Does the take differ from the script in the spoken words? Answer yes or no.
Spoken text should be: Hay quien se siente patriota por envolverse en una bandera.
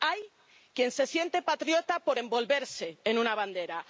no